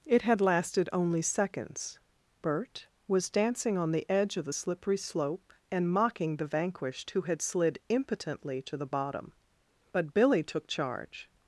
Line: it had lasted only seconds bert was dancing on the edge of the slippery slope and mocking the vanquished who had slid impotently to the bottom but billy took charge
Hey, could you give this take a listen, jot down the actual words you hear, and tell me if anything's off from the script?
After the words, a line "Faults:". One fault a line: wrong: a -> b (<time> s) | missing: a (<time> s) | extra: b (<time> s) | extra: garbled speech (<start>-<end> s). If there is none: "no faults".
it had lasted only seconds bert was dancing on the edge of the slippery slope and mocking the vanquished who had slid impotently to the bottom but billy took charge
Faults:
no faults